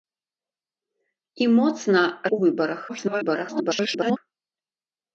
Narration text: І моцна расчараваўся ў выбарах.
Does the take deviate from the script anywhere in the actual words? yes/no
yes